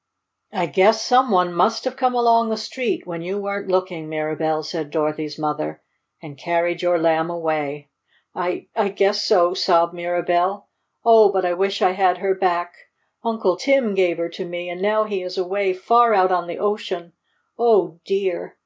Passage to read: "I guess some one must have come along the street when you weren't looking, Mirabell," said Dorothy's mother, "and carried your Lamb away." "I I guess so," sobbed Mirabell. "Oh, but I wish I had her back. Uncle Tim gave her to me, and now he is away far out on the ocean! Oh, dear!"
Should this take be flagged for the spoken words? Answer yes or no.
no